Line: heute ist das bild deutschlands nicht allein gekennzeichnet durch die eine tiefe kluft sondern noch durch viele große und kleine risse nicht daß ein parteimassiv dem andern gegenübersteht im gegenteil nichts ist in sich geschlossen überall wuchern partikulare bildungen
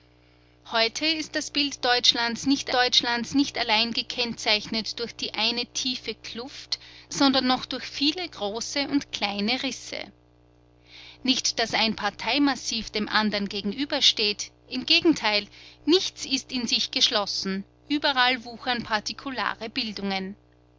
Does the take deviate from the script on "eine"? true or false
false